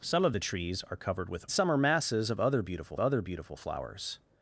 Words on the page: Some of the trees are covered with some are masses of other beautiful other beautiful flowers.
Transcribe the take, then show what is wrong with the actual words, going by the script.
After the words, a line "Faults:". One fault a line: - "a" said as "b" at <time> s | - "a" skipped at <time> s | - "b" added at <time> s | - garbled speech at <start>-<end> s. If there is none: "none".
Some of the trees are covered with some are masses of other beautiful other beautiful flowers.
Faults:
none